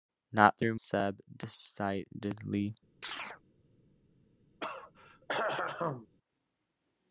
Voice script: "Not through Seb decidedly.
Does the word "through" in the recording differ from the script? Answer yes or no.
no